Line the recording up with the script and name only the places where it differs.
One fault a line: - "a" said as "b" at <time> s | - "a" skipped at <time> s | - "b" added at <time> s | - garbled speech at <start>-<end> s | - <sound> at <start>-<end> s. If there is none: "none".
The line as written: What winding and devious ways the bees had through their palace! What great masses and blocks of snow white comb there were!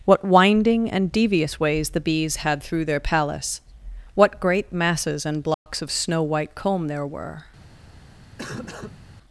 - dropout at 5.5-5.7 s
- cough at 8.4-9.0 s